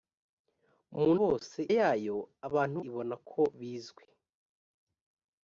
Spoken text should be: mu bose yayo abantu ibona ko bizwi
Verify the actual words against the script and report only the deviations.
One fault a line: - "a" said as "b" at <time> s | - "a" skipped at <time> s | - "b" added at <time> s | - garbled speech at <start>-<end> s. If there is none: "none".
none